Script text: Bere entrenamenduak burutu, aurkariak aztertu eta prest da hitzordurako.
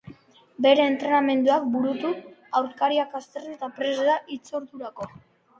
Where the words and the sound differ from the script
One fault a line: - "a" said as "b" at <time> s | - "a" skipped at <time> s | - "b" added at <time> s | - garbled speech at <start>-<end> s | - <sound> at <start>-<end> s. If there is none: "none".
none